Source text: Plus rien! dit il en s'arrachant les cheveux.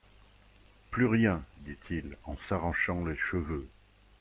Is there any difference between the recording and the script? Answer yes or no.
no